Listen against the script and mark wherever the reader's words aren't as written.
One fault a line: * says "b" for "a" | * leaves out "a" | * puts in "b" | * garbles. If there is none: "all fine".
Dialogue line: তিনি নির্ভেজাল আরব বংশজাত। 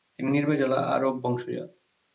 all fine